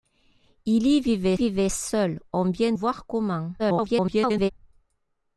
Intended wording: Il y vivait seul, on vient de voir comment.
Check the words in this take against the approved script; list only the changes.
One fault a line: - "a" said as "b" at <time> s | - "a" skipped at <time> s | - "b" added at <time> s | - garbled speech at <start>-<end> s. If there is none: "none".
- "vivait" added at 1.3 s
- "de" skipped at 2.7 s
- garbled speech at 3.6-4.5 s